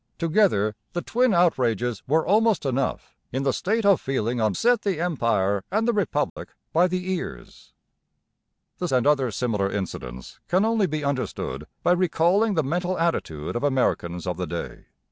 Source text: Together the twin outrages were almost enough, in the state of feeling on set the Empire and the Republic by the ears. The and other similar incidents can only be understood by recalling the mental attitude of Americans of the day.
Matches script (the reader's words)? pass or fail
pass